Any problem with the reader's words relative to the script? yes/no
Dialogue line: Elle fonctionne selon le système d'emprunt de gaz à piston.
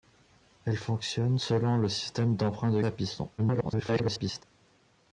yes